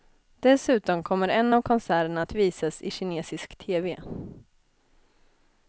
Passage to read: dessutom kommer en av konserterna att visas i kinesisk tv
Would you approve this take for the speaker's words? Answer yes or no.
yes